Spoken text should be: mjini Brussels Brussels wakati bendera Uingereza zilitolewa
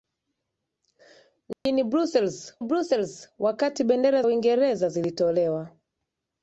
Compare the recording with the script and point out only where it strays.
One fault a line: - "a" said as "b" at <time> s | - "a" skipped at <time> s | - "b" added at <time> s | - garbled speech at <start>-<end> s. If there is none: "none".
none